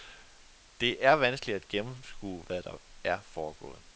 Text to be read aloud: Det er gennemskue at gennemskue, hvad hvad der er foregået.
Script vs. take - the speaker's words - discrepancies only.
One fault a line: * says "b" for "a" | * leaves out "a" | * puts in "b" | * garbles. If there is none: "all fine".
* says "vanskeligt" for "gennemskue"
* leaves out "hvad"